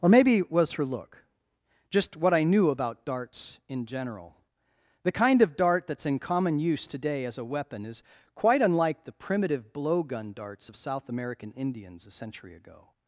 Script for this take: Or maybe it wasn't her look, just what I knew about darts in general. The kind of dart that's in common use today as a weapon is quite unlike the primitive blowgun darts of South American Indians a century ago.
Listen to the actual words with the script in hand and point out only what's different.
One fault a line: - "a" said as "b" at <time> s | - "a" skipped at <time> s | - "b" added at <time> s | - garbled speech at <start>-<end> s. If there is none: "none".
- "wasn't" said as "was" at 0.5 s